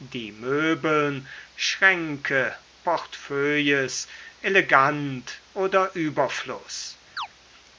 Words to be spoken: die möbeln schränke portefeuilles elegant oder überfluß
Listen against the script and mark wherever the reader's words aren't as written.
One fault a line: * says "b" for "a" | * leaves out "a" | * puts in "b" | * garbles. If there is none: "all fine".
all fine